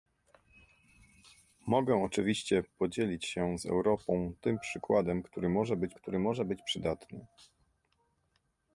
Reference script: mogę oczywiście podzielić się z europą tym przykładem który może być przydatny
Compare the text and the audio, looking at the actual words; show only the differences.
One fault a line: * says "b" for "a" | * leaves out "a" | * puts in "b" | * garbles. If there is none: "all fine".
* puts in "który może być"